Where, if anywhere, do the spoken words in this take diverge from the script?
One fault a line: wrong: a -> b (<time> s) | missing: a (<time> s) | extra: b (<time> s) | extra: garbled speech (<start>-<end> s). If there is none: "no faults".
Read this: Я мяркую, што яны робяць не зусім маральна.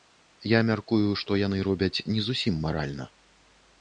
no faults